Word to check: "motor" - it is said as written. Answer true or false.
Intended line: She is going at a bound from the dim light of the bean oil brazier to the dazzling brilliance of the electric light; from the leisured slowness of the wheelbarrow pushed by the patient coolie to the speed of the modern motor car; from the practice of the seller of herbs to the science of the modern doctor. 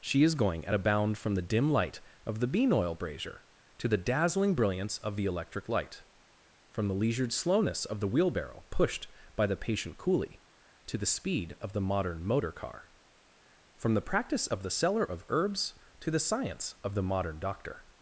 true